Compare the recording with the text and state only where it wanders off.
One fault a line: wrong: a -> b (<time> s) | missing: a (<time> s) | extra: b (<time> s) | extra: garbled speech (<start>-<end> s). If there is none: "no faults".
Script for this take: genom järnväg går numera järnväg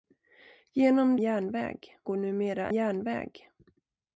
no faults